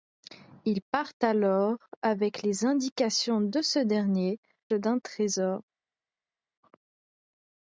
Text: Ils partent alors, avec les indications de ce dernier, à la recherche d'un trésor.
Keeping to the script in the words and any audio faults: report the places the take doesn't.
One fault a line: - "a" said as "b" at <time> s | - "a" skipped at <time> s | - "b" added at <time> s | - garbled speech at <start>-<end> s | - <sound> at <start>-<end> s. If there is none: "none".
- "à la recherche" skipped at 4.4 s